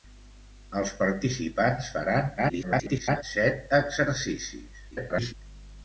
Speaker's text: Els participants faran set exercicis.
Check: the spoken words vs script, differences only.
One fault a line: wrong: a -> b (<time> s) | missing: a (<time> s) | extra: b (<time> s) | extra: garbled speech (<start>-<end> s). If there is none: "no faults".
extra: garbled speech (2.4-3.2 s)
extra: garbled speech (4.9-5.3 s)